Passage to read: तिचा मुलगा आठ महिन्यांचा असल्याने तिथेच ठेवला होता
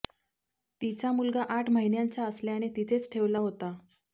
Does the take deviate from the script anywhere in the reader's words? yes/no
no